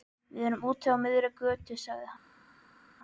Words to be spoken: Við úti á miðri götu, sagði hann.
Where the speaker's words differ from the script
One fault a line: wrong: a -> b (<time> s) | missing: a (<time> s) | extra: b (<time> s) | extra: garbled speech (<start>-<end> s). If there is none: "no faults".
extra: erum (0.5 s)